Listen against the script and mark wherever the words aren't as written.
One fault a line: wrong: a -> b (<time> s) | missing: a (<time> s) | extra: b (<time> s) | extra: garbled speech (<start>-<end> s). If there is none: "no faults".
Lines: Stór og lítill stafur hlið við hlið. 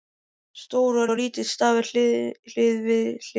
extra: og (1.1 s)